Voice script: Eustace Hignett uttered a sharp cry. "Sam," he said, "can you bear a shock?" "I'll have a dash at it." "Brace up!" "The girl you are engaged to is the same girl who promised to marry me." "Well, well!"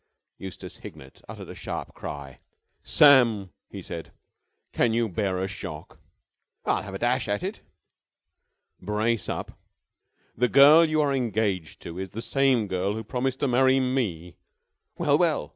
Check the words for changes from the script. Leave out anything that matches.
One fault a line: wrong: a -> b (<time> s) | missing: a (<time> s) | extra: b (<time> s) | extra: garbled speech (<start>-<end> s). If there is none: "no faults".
no faults